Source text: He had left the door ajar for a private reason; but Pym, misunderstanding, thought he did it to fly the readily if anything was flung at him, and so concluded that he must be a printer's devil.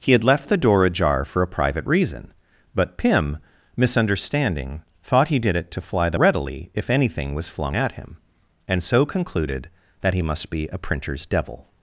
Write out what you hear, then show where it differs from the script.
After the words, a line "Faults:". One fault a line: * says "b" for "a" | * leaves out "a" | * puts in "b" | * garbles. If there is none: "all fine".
He had left the door ajar for a private reason; but Pym, misunderstanding, thought he did it to fly the readily if anything was flung at him, and so concluded that he must be a printer's devil.
Faults:
all fine